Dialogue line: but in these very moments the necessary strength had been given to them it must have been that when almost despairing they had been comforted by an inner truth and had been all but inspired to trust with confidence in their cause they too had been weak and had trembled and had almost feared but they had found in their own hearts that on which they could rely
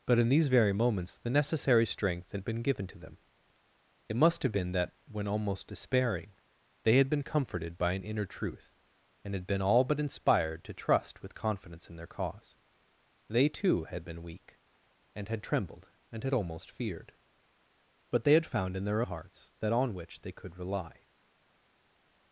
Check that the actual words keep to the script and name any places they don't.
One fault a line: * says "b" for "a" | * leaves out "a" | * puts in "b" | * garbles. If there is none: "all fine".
* leaves out "own"